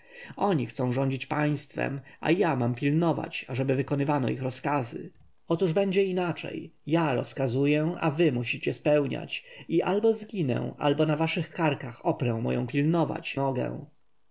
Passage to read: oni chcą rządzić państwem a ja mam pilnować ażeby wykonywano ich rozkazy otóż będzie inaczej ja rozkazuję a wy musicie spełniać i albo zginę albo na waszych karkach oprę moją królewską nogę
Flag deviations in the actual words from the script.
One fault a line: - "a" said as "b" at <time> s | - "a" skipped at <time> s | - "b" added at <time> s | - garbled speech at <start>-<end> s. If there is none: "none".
- "królewską" said as "pilnować" at 12.7 s